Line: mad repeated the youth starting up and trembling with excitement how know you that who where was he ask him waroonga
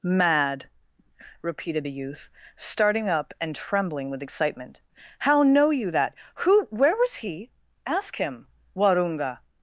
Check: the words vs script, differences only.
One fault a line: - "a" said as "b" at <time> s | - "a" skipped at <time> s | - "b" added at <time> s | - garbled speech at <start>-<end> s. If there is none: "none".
none